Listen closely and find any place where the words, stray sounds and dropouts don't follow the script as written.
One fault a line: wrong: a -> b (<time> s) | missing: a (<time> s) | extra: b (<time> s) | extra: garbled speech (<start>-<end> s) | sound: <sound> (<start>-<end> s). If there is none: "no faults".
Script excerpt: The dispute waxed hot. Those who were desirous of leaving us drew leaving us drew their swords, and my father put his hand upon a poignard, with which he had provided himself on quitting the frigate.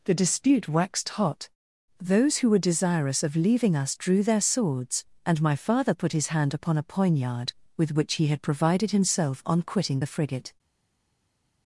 missing: leaving us drew (4.2 s)